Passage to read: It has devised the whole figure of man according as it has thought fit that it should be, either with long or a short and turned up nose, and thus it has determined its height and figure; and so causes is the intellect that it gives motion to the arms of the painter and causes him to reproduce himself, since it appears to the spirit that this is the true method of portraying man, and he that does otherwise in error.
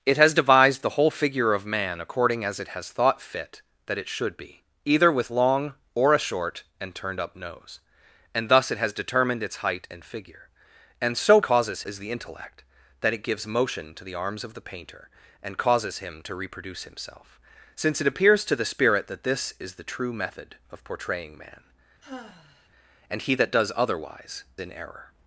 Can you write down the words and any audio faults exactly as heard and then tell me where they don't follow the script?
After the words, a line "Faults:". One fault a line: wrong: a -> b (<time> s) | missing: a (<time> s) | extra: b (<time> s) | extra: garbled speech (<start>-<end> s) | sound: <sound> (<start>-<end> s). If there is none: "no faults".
It has devised the whole figure of man according as it has thought fit that it should be, either with long or a short and turned up nose, and thus it has determined its height and figure; and so causes is the intellect that it gives motion to the arms of the painter and causes him to reproduce himself, since it appears to the spirit that this is the true method of portraying man, and he that does otherwise in error.
Faults:
sound: sigh (22.0-22.7 s)